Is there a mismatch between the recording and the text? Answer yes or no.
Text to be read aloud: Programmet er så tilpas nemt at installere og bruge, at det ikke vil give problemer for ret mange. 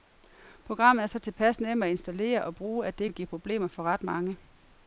yes